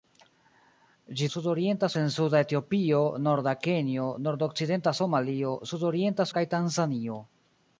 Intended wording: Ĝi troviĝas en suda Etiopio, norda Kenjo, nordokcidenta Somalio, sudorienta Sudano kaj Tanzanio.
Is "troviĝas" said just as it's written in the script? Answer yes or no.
no